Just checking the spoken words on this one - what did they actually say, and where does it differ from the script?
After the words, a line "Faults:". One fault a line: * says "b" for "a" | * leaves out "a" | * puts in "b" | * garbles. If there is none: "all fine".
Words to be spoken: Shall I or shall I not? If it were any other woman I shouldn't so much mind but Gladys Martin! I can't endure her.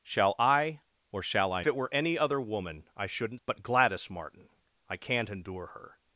Shall I or shall I it were any other woman I shouldn't but Gladys Martin! I can't endure her.
Faults:
* leaves out "not If"
* leaves out "so much mind"